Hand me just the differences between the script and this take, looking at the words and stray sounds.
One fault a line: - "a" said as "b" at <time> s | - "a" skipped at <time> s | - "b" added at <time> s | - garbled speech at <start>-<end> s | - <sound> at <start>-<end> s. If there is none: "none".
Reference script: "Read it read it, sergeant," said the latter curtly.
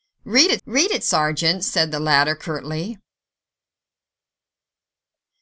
none